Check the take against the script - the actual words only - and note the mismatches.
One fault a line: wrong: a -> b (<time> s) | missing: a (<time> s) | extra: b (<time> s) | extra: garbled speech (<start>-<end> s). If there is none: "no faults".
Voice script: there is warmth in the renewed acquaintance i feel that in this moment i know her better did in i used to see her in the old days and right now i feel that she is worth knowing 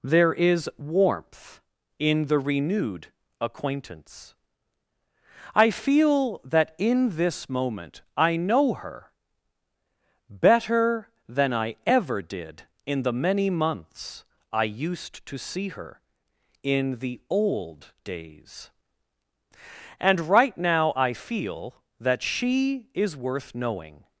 extra: than i ever (11.3 s)
extra: the many months (13.0 s)